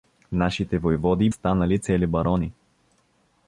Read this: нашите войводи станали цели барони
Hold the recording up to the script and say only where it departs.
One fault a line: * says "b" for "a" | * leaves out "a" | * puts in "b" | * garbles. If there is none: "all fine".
all fine